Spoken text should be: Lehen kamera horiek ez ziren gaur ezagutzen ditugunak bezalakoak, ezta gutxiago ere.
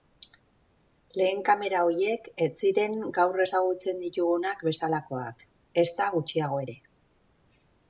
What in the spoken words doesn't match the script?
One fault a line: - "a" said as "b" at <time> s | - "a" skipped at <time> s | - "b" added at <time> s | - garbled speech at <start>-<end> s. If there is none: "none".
none